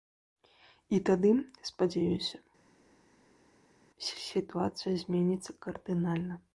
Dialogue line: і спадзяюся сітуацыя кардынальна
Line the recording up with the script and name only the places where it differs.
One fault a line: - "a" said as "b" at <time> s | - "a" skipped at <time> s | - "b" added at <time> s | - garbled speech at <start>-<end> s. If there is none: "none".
- "тады" added at 1.1 s
- "зменіцца" added at 5.1 s